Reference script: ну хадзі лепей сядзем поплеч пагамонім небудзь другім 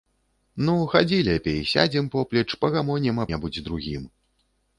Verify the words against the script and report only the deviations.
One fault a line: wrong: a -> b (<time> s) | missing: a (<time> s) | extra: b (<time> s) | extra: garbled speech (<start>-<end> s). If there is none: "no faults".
no faults